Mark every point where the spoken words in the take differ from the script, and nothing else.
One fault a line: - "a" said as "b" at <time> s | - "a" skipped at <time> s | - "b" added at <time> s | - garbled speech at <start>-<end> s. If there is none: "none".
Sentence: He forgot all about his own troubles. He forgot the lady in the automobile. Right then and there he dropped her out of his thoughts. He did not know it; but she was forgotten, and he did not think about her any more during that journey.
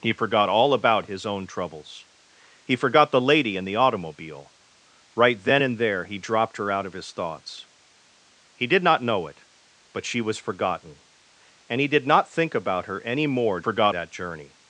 - "during" said as "forgot" at 13.6 s